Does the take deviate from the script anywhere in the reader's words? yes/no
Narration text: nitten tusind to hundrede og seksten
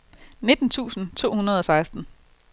no